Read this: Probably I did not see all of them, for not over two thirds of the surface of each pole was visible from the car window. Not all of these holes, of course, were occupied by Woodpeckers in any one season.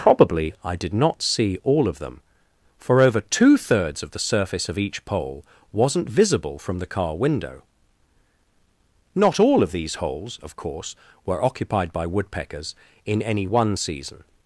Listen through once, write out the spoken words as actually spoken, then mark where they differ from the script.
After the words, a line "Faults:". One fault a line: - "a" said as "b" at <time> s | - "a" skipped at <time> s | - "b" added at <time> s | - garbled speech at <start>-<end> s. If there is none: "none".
Probably I did not see all of them, for over two thirds of the surface of each pole wasn't visible from the car window. Not all of these holes, of course, were occupied by Woodpeckers in any one season.
Faults:
- "not" skipped at 3.0 s
- "was" said as "wasn't" at 5.7 s